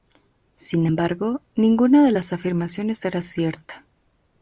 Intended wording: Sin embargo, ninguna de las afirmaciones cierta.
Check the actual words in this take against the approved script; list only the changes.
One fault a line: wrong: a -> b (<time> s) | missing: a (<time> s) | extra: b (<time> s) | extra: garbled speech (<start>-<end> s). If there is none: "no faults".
extra: era (3.0 s)